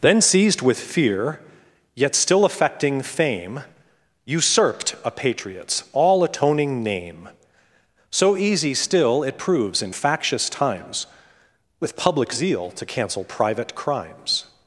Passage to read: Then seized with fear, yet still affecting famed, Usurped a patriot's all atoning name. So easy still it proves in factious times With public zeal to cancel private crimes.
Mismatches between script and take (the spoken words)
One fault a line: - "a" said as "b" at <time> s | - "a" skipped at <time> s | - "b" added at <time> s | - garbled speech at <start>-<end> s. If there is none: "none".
- "famed" said as "fame" at 3.0 s